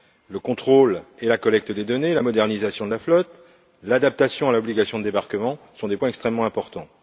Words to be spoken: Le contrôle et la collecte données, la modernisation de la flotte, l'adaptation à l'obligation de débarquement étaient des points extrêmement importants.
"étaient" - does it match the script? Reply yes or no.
no